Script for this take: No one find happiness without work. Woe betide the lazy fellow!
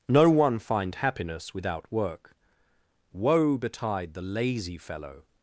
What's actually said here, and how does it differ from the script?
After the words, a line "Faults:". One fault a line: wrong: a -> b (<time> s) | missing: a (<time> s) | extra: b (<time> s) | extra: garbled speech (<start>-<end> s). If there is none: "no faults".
No one find happiness without work. Woe betide the lazy fellow!
Faults:
no faults